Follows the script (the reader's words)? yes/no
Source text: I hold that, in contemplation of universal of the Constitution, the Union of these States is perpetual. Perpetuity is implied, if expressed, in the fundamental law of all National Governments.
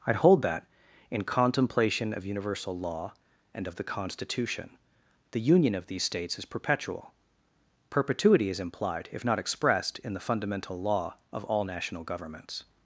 no